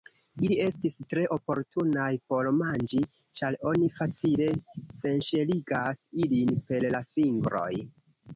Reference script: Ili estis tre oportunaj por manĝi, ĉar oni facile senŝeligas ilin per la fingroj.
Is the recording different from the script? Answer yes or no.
no